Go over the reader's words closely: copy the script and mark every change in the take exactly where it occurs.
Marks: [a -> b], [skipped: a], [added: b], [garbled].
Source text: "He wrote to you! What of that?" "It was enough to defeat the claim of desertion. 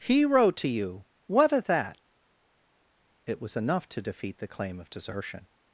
"He wrote to you! What of that?" "It was enough to defeat the claim of desertion.